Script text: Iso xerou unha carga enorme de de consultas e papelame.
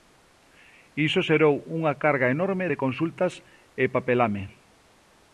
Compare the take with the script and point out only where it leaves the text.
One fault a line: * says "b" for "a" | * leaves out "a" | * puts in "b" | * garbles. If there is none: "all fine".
* leaves out "de"